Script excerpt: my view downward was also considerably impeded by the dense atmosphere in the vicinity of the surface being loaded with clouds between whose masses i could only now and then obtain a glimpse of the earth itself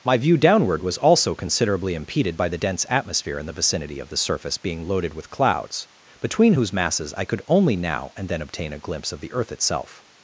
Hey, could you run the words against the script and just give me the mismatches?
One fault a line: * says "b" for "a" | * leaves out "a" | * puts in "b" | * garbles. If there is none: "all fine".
all fine